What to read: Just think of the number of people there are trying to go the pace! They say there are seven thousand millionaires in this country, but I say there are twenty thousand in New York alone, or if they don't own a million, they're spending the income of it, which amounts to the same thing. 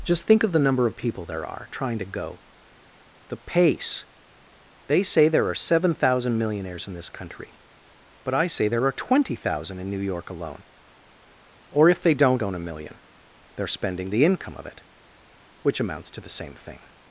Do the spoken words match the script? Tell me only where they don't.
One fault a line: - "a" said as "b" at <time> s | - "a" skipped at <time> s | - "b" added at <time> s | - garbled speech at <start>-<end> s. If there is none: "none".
none